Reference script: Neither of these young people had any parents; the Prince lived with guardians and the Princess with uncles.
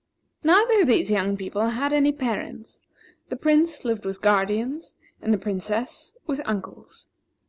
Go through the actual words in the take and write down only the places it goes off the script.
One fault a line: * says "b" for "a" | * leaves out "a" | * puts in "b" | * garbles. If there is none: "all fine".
all fine